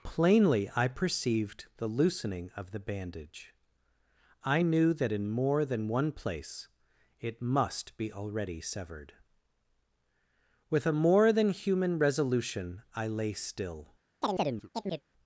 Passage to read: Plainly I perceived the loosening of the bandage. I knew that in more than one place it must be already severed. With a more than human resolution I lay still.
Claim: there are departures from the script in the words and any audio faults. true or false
true